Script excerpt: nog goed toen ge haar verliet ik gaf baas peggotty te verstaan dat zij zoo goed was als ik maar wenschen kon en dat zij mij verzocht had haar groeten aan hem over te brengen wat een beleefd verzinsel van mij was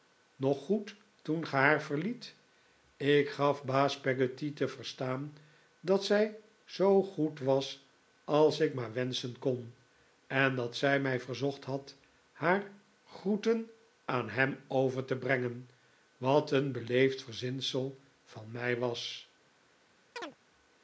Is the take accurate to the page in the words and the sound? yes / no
no